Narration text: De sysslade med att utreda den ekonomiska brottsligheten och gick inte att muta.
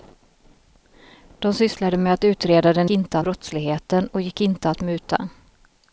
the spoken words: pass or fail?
fail